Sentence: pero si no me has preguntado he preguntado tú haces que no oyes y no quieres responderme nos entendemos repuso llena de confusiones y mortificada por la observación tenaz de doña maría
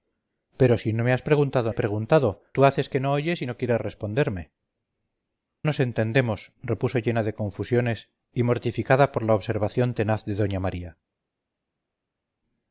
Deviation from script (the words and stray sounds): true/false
false